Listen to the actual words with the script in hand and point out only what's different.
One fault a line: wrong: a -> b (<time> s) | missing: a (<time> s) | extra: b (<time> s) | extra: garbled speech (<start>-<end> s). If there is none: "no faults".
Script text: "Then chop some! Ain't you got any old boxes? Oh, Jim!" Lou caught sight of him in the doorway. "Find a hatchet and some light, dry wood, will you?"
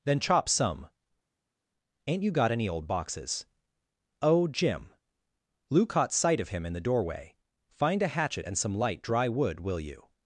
no faults